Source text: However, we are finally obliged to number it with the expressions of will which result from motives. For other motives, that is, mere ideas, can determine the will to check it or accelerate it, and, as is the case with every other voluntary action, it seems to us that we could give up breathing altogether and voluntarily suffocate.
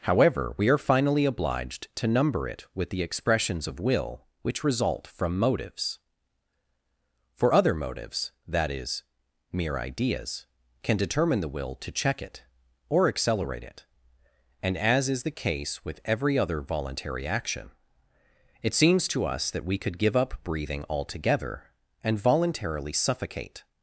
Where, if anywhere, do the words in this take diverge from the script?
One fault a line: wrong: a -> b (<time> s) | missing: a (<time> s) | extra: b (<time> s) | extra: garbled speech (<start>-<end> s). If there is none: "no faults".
no faults